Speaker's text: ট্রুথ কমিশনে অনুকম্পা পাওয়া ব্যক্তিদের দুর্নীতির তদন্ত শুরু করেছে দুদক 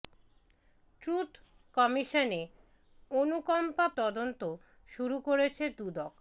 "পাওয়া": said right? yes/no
no